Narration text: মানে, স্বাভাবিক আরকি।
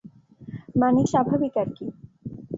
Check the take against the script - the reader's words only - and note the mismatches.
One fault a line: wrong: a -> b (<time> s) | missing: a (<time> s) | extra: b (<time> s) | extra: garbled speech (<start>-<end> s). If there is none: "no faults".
no faults